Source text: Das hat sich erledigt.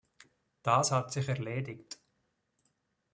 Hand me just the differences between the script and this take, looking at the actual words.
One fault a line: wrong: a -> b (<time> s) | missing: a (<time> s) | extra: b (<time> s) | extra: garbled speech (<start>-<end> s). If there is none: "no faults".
no faults